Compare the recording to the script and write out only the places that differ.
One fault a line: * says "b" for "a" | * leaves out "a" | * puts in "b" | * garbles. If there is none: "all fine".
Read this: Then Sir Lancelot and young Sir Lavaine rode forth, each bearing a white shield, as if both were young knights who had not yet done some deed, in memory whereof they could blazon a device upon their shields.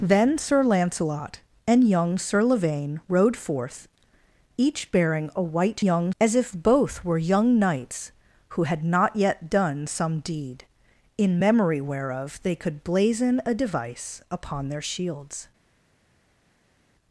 * says "young" for "shield"